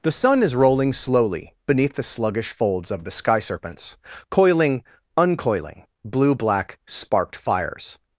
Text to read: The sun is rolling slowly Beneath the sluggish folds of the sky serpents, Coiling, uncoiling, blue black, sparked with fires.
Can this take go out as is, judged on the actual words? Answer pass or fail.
fail